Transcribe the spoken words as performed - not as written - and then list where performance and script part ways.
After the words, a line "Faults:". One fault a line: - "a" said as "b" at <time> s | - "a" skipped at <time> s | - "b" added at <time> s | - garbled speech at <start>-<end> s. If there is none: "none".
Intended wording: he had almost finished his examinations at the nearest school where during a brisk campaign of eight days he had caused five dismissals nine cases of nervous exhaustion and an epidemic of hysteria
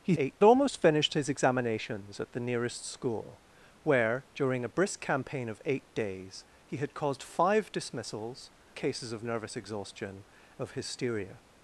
he eight almost finished his examinations at the nearest school where during a brisk campaign of eight days he had caused five dismissals cases of nervous exhaustion of hysteria
Faults:
- "had" said as "eight" at 0.1 s
- "nine" skipped at 8.5 s
- "and an epidemic" skipped at 10.2 s